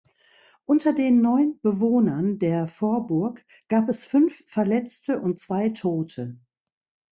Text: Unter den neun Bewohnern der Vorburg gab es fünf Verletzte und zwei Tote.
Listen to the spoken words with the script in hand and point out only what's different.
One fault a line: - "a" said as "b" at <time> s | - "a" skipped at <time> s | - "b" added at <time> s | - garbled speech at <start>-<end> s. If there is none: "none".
none